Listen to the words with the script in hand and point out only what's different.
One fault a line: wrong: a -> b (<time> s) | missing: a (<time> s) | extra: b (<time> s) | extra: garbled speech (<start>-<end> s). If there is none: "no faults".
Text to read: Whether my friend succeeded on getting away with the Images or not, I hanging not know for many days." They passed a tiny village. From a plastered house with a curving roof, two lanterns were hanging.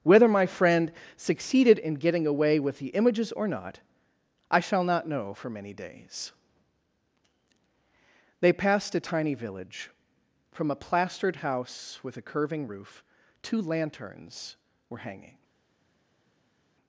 wrong: on -> in (1.8 s)
wrong: hanging -> shall (4.6 s)